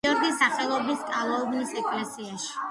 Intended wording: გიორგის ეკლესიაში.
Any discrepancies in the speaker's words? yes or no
yes